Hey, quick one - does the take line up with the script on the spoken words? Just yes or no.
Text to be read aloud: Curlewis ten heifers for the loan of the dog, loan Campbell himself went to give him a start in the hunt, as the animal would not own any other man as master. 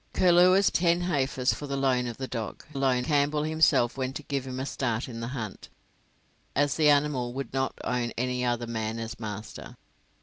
yes